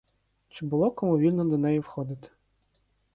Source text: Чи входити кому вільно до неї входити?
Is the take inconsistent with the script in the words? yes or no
yes